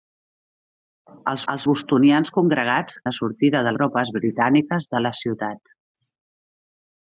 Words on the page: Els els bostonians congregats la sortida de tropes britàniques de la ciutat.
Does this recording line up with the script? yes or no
yes